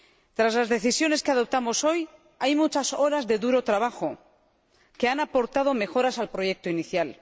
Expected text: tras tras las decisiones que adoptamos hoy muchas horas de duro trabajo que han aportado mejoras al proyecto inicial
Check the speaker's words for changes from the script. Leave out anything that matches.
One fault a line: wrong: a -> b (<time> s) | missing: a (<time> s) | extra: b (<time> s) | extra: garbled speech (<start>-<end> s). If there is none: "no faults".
missing: tras (0.6 s)
extra: hay (2.4 s)